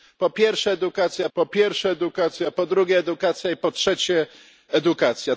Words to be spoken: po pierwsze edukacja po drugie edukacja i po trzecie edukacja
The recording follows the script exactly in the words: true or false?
false